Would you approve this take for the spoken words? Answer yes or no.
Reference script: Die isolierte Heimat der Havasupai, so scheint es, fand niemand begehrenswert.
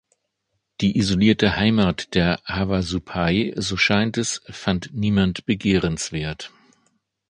yes